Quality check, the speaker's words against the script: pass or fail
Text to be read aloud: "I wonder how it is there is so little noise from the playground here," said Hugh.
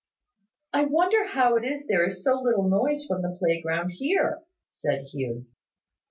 pass